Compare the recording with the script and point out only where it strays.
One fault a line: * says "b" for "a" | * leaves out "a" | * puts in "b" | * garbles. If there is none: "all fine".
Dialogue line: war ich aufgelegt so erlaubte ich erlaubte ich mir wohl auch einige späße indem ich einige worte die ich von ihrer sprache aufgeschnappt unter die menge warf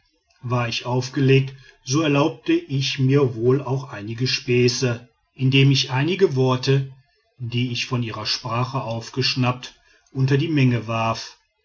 * leaves out "erlaubte ich"